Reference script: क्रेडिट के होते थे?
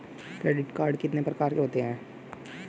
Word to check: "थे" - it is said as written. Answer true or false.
false